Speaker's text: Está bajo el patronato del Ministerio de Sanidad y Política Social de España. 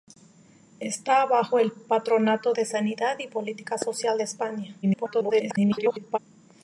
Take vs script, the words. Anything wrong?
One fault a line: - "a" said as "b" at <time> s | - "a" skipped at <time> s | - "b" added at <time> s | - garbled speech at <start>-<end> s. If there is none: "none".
- "del Ministerio" skipped at 2.5 s
- garbled speech at 4.8-6.2 s